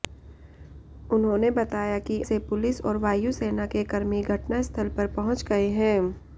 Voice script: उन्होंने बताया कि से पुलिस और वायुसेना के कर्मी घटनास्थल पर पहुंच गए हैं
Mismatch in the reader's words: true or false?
false